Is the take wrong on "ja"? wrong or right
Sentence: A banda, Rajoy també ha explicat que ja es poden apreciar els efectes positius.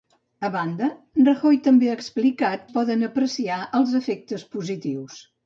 wrong